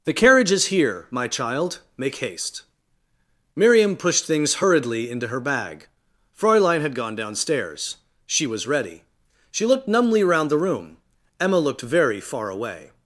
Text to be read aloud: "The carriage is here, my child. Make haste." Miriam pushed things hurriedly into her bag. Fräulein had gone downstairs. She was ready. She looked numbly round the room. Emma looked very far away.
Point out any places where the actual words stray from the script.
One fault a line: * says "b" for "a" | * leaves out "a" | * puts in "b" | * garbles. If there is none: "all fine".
all fine